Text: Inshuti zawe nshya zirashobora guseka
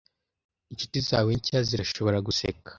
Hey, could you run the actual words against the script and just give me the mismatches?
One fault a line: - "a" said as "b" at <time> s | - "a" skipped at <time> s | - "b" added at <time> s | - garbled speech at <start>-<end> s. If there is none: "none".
none